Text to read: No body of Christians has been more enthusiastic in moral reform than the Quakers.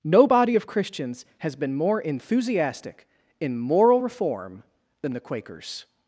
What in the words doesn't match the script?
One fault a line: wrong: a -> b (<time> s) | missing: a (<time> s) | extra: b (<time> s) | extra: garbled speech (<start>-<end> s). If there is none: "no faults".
no faults